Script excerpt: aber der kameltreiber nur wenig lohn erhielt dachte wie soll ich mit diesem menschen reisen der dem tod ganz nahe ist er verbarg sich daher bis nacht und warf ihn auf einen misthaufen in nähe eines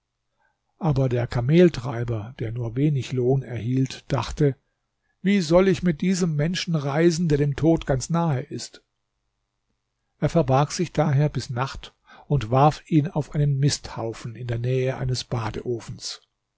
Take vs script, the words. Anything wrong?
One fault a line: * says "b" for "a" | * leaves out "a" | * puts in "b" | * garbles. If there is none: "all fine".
* puts in "der"
* puts in "der"